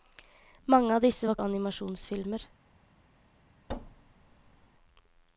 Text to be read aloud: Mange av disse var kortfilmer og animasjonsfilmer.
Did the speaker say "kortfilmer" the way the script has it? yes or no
no